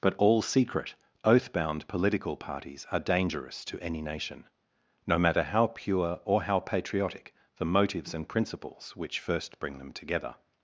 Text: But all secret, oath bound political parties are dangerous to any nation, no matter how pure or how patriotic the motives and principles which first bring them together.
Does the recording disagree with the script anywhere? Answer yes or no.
no